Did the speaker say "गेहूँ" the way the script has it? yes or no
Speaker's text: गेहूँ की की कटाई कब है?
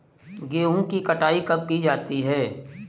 yes